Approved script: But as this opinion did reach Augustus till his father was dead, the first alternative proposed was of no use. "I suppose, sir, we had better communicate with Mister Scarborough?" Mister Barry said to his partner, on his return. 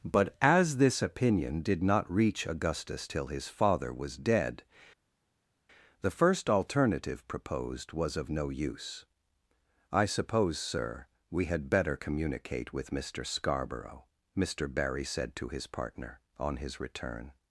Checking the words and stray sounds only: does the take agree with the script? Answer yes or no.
no